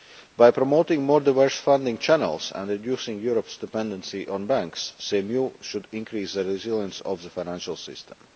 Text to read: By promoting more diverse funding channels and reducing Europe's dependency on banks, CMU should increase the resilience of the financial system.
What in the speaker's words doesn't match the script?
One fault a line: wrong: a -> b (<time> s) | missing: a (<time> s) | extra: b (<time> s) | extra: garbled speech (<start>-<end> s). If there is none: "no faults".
no faults